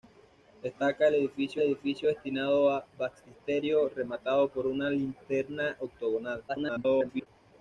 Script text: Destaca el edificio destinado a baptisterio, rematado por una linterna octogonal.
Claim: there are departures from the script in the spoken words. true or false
true